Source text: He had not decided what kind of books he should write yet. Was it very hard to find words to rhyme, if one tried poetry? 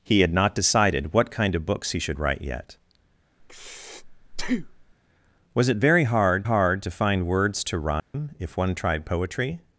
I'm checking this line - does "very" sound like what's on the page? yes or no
yes